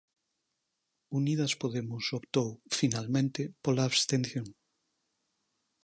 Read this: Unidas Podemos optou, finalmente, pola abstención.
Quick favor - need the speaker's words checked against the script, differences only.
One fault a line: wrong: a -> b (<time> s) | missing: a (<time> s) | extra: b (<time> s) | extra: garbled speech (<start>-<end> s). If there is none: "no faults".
no faults